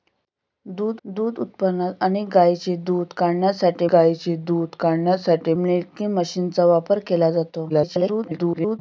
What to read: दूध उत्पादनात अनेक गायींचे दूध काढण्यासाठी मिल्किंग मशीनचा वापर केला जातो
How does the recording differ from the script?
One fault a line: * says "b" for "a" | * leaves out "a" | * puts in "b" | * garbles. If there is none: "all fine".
* puts in "दूध"
* puts in "गायींचे दूध काढण्यासाठी"
* garbles